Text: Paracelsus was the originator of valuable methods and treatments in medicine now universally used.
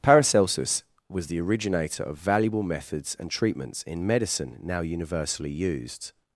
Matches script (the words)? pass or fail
pass